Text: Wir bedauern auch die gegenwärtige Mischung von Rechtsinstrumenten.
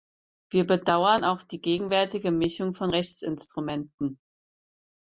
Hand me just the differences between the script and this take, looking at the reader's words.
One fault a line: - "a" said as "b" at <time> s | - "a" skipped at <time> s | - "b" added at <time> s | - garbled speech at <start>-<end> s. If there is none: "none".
none